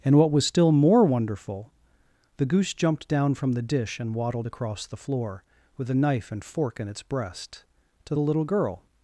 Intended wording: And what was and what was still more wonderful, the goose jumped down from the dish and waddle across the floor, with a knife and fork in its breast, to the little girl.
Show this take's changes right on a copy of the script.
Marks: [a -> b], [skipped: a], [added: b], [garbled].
And what was [skipped: and what was] still more wonderful, the goose jumped down from the dish and [waddle -> waddled] across the floor, with a knife and fork in its breast, to the little girl.